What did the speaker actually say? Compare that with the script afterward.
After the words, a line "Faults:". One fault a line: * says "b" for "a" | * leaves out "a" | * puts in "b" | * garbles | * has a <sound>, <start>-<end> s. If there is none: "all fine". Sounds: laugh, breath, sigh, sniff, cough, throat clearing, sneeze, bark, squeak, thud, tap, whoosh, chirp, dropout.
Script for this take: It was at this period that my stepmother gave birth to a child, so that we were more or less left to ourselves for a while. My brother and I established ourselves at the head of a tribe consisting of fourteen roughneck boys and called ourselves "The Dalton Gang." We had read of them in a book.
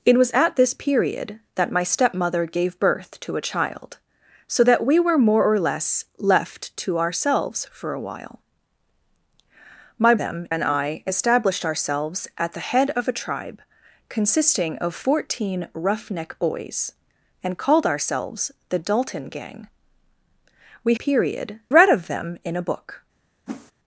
It was at this period that my stepmother gave birth to a child, so that we were more or less left to ourselves for a while. My them and I established ourselves at the head of a tribe consisting of fourteen roughneck boys and called ourselves "The Dalton Gang." We period read of them in a book.
Faults:
* says "them" for "brother"
* says "period" for "had"
* has a whoosh, 23.5-23.7 s